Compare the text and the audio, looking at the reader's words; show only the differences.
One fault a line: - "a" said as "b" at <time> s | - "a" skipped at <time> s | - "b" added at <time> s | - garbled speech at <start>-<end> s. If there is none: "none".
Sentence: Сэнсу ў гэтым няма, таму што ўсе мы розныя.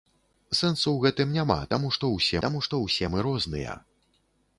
- "таму што ўсе" added at 2.5 s